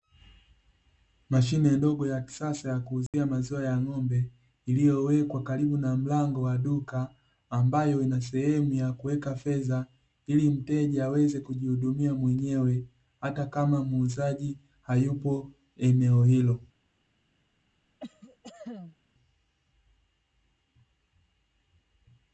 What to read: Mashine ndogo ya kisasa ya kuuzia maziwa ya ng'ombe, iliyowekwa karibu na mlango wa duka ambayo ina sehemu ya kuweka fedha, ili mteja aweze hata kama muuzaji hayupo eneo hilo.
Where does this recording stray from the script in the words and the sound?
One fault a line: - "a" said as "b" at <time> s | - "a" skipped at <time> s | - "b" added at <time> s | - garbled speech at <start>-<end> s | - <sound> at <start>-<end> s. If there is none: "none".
- dropout at 3.1-3.1 s
- "kujihudumia mwenyewe" added at 11.4 s
- cough at 18.0-19.0 s